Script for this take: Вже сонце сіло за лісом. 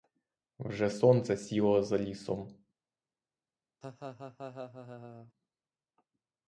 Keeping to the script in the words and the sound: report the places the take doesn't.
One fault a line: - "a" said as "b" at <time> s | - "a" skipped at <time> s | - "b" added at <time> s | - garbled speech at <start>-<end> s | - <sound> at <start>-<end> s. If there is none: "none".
- laugh at 3.8-5.3 s